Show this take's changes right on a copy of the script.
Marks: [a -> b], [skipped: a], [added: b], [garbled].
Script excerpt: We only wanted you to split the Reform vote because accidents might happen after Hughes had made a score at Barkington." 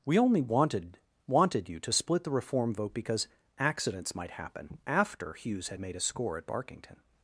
We only wanted [added: wanted] you to split the Reform vote because accidents might happen after Hughes had made a score at Barkington."